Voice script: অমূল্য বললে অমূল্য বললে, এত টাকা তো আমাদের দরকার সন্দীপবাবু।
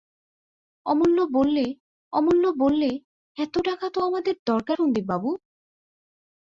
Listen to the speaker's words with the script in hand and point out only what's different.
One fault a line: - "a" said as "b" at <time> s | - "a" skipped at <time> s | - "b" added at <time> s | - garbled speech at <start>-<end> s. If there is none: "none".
none